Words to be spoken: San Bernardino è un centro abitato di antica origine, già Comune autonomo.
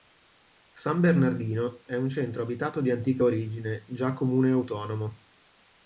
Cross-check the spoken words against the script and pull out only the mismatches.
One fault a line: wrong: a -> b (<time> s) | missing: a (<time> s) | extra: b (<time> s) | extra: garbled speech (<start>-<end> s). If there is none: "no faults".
no faults